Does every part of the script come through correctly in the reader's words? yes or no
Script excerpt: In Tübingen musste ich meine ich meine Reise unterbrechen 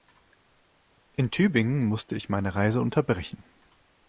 no